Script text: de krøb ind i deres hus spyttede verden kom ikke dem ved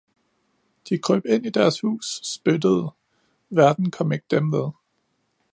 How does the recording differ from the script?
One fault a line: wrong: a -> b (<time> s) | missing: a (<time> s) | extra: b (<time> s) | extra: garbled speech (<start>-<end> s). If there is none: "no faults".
no faults